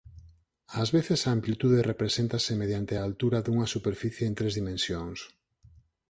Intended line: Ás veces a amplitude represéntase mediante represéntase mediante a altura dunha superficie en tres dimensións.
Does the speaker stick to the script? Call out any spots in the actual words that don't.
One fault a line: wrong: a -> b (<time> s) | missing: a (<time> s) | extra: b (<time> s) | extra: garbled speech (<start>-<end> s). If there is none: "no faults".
missing: represéntase mediante (2.9 s)